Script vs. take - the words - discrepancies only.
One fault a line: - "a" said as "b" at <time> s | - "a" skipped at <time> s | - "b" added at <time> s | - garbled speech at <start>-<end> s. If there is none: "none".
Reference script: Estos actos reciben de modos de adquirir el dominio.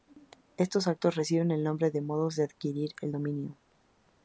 - "el nombre" added at 1.5 s